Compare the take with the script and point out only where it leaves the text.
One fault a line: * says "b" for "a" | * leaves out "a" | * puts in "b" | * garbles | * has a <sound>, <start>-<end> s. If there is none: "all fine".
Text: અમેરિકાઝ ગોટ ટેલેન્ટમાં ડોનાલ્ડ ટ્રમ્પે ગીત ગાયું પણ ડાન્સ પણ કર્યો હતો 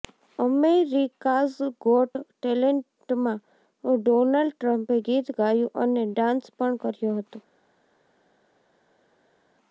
* says "અને" for "પણ"